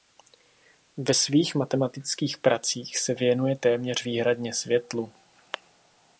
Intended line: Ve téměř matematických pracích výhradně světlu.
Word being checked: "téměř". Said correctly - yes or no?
no